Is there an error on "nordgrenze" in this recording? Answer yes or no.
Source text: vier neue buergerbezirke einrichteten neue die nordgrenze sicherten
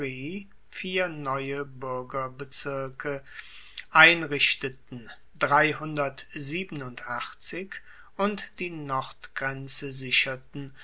no